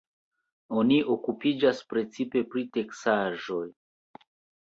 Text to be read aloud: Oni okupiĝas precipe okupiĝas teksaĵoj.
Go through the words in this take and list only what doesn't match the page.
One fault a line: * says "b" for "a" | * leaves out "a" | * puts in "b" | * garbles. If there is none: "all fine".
* says "pri" for "okupiĝas"